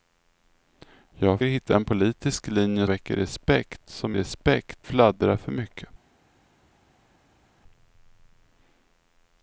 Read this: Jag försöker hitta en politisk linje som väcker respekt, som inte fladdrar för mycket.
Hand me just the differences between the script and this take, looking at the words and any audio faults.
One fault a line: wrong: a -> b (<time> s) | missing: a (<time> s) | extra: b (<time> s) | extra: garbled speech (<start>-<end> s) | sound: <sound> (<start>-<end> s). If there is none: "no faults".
missing: försöker (1.4 s)
missing: som (2.9 s)
wrong: inte -> respekt (4.1 s)